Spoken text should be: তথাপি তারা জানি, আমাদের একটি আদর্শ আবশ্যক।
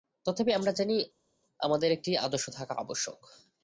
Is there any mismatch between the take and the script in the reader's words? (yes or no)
yes